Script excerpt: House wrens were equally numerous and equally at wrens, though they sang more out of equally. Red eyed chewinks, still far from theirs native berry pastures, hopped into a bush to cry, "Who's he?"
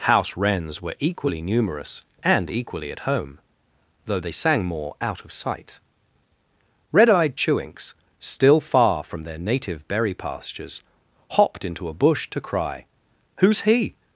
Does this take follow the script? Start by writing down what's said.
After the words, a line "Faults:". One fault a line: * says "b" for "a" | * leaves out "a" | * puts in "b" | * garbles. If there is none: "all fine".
House wrens were equally numerous and equally at home, though they sang more out of sight. Red eyed chewinks, still far from their native berry pastures, hopped into a bush to cry, "Who's he?"
Faults:
* says "home" for "wrens"
* says "sight" for "equally"
* says "their" for "theirs"